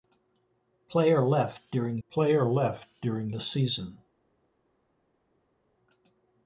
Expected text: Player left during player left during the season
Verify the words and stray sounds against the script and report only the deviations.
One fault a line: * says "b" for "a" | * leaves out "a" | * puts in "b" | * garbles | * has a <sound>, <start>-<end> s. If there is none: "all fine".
all fine